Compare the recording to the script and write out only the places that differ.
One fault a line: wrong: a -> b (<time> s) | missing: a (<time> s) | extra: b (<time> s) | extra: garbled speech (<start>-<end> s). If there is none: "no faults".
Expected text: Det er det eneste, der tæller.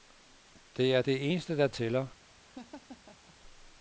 no faults